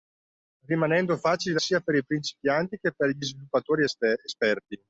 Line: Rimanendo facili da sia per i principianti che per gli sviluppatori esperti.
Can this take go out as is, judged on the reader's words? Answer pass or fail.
pass